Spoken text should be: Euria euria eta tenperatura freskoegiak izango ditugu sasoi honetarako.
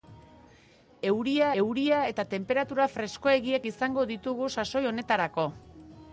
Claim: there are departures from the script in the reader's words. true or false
false